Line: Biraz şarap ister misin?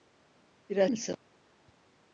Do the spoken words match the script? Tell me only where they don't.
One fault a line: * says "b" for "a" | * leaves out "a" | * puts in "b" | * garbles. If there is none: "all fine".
* leaves out "şarap ister"